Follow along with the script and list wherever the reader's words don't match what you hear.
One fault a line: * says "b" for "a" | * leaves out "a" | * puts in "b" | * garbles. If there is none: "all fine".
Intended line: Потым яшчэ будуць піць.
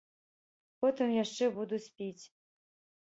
all fine